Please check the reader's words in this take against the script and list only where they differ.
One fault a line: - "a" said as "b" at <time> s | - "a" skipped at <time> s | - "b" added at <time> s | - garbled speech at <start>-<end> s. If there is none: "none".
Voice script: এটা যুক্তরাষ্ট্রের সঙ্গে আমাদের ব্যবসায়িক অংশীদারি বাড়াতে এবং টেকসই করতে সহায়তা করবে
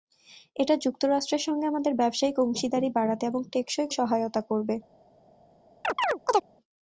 - "করতে" skipped at 3.9 s